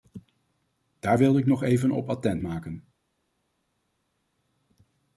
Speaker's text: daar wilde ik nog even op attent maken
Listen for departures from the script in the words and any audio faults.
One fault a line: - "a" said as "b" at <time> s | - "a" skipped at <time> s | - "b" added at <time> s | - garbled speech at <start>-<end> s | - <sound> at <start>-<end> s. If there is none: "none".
none